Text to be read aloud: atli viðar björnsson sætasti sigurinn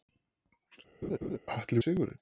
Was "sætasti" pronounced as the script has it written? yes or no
no